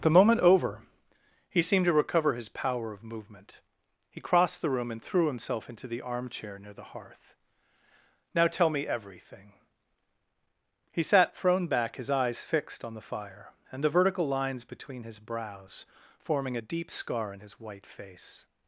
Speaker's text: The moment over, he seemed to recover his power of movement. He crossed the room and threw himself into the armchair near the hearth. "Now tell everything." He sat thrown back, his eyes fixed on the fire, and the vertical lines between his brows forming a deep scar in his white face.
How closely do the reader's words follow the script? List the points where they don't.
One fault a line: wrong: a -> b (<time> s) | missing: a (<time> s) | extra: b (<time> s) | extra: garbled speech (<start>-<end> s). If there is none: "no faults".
extra: me (8.7 s)